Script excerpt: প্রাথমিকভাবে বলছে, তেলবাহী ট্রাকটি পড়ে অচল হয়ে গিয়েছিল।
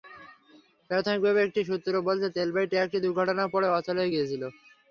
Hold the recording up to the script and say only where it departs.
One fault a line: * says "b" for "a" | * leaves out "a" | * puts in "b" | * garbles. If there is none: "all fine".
* puts in "একটি সূত্র"
* puts in "দুর্ঘটনায়"